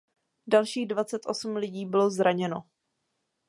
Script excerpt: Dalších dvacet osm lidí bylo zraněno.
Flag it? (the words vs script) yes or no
no